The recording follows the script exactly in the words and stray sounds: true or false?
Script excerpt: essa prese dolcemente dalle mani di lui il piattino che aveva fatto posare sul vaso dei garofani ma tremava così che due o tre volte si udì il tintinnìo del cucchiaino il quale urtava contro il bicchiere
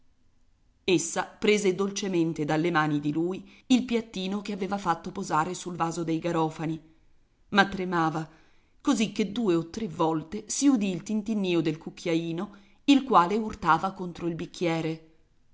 true